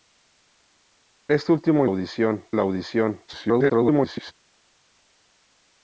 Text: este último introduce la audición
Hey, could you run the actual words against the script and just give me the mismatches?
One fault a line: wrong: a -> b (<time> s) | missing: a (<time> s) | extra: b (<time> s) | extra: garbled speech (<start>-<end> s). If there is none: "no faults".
wrong: introduce -> audición (1.9 s)
extra: garbled speech (3.3-4.3 s)